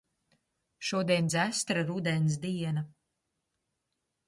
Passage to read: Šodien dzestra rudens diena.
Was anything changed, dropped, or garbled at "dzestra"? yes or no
no